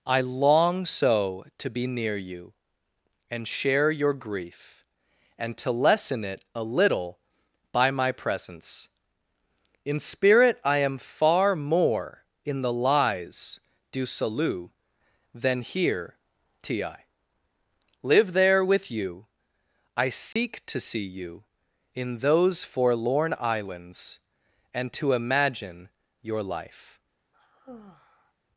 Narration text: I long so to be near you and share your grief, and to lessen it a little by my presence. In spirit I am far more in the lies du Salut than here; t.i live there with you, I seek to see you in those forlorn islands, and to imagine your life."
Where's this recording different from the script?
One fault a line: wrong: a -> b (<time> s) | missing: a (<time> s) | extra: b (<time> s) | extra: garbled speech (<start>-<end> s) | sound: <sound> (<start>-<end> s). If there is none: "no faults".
sound: dropout (20.3-20.4 s)
sound: sigh (27.3-28.3 s)